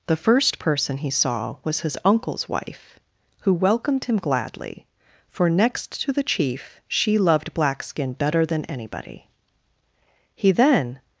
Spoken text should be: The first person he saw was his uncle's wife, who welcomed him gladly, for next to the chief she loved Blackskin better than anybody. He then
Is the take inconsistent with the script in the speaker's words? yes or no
no